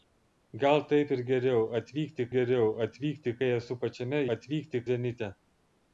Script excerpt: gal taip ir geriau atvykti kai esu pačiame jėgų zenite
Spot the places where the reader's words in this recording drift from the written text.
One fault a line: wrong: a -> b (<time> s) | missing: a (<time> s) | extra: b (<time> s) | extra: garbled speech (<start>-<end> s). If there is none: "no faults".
extra: geriau atvykti (2.3 s)
wrong: jėgų -> atvykti (4.4 s)